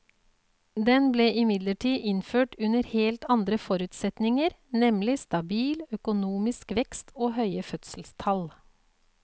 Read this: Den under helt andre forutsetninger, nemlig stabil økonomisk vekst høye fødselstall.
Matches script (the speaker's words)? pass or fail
fail